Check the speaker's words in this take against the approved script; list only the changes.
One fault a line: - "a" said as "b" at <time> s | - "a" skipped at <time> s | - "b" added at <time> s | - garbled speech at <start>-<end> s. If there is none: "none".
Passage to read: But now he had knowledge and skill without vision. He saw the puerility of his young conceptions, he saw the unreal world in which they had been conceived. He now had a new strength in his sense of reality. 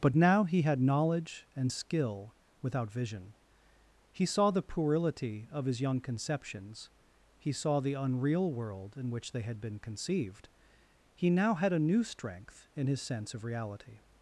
none